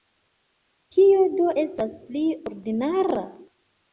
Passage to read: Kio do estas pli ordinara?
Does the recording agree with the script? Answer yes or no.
yes